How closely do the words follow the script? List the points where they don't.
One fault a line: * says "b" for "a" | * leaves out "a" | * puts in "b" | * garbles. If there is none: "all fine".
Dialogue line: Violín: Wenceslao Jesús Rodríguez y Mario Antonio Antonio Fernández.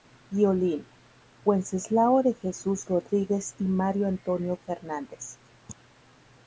* puts in "de"
* leaves out "Antonio"